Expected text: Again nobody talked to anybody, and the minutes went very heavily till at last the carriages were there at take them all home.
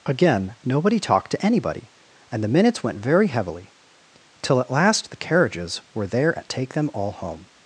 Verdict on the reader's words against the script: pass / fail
pass